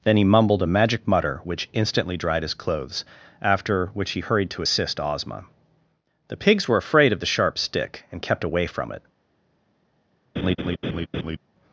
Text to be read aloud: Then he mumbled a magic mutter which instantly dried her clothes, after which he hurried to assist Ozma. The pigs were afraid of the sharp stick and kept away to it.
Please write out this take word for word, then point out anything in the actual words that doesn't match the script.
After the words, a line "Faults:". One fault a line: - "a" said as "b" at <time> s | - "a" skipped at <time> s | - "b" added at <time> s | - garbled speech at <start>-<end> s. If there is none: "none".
Then he mumbled a magic mutter which instantly dried his clothes, after which he hurried to assist Ozma. The pigs were afraid of the sharp stick and kept away from it.
Faults:
- "her" said as "his" at 2.4 s
- "to" said as "from" at 8.7 s